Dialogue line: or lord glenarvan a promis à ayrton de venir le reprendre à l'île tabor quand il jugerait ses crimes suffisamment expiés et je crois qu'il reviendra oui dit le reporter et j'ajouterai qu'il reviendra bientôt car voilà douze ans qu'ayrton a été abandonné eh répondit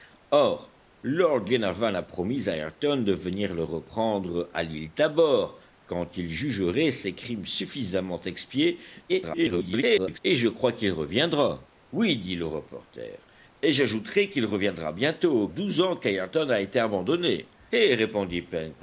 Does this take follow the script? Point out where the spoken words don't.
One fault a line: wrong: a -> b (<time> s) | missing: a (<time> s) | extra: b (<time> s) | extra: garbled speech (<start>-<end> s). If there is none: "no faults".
extra: garbled speech (9.1-10.2 s)
missing: car voilà (15.5 s)